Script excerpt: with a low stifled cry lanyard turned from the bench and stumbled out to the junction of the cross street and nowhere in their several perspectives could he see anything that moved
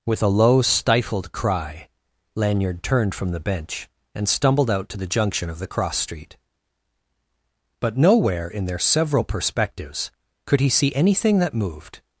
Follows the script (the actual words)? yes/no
no